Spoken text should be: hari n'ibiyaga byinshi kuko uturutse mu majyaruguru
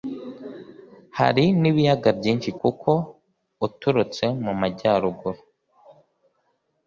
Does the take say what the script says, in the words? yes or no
yes